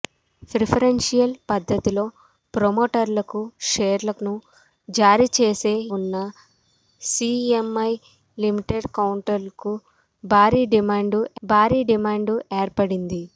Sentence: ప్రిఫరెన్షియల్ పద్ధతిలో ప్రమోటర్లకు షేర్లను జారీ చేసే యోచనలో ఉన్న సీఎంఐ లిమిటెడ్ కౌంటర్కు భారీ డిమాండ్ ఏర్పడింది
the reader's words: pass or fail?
fail